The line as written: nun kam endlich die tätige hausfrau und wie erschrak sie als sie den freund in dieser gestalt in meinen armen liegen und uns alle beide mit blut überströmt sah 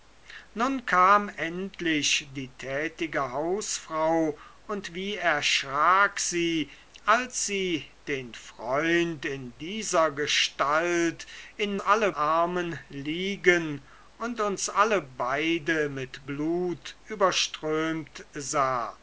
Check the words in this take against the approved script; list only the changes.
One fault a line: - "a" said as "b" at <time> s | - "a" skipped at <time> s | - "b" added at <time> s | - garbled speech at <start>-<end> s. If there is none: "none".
- "meinen" said as "alle" at 11.8 s